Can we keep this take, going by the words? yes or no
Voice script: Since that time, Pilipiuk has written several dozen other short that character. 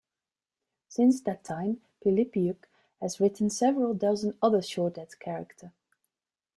yes